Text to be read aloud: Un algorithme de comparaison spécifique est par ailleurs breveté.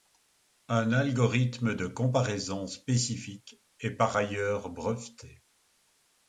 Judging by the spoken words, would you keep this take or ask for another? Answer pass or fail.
pass